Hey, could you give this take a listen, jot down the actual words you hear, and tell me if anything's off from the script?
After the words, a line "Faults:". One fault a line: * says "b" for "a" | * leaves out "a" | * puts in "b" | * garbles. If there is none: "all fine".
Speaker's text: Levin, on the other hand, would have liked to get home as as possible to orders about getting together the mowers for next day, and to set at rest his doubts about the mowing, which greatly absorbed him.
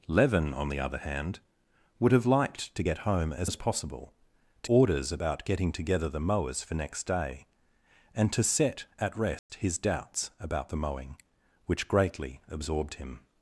Levin, on the other hand, would have liked to get home as as possible to orders about getting together the mowers for next day, and to set at rest his doubts about the mowing, which greatly absorbed him.
Faults:
all fine